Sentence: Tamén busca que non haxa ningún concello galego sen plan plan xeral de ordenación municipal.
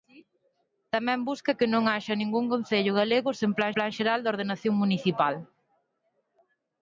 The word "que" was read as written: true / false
true